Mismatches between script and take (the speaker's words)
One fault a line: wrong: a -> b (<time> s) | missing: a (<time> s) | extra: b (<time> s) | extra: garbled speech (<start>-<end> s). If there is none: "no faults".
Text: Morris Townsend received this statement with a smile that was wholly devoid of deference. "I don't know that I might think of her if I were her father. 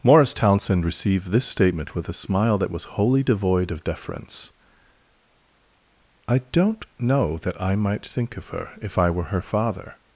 no faults